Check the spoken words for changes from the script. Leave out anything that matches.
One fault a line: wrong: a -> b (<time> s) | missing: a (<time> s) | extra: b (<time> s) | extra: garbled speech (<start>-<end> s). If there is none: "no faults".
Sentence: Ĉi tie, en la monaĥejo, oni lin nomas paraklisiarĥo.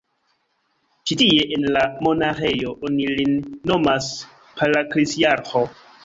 no faults